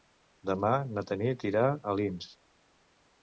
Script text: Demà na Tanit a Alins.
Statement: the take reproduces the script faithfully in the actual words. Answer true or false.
false